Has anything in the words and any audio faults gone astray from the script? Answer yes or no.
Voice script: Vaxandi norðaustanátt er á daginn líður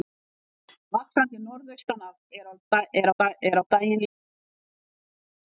yes